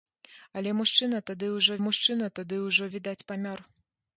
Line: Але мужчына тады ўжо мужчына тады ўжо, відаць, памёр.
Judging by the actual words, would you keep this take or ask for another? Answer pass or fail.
pass